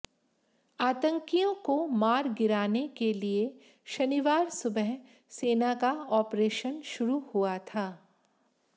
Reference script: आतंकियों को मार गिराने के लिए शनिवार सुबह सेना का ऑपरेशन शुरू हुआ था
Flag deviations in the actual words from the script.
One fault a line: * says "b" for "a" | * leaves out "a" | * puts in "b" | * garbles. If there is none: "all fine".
all fine